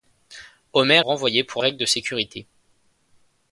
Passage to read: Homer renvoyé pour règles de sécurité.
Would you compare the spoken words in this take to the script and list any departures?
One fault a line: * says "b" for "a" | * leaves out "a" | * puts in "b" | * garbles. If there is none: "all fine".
all fine